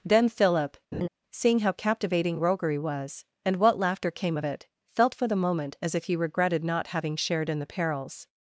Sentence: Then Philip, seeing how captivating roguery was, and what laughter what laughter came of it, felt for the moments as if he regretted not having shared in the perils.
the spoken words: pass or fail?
fail